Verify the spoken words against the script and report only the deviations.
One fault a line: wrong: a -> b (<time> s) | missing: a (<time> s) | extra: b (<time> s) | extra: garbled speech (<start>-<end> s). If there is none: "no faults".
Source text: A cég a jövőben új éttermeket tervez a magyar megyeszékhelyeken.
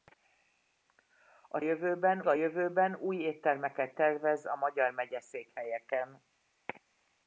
wrong: cég -> jövőben (1.6 s)